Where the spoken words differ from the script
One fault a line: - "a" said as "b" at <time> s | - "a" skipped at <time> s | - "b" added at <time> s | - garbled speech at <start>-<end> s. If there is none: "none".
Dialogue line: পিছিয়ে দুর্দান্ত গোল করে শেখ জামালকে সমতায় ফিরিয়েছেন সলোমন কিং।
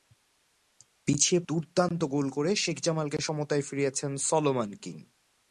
none